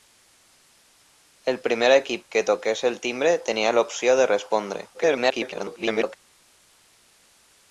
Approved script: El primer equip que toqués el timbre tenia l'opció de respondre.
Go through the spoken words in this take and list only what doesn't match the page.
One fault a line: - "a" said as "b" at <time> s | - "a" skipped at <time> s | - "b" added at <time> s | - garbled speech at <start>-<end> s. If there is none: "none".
- garbled speech at 4.9-6.2 s